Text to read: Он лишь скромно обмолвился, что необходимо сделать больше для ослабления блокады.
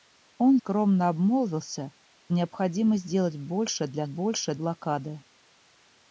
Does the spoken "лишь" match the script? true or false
false